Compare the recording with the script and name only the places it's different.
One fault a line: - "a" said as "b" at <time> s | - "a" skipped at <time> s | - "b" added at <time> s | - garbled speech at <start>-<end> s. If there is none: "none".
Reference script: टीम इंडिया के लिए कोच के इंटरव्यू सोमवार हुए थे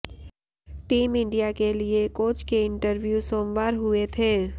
none